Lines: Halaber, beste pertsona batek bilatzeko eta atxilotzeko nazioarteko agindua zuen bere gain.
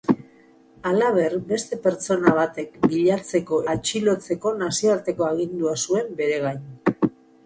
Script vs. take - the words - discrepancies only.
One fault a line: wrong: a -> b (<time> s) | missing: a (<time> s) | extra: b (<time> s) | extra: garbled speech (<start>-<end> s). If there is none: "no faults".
missing: eta (3.6 s)